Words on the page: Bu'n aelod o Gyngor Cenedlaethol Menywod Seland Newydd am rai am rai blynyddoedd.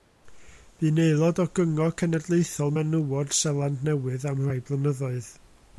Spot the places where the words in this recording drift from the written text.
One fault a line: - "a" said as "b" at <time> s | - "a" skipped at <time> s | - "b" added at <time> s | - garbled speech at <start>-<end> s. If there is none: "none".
- "am rai" skipped at 4.6 s